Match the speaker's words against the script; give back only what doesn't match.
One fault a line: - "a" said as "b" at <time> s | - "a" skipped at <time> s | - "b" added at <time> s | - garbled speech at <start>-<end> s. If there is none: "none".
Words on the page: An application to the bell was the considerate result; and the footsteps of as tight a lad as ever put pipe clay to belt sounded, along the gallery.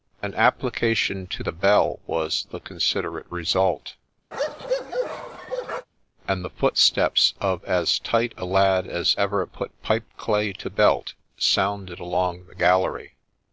none